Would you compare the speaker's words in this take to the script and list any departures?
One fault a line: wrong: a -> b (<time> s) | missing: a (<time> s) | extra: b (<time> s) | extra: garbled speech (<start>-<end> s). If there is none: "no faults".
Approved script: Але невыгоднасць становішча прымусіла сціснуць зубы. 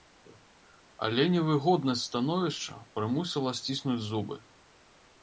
no faults